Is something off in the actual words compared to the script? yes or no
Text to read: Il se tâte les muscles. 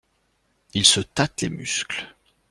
no